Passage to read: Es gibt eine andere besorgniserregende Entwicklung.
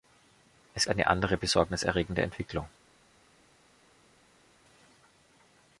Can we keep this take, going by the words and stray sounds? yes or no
no